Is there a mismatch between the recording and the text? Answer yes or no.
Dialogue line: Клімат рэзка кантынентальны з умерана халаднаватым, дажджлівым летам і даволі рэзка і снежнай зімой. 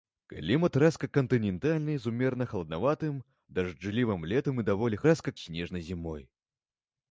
no